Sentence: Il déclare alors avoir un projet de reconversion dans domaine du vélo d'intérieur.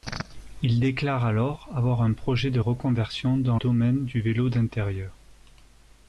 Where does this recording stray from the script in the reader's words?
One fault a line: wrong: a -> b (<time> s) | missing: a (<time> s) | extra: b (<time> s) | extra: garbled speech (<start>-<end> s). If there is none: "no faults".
no faults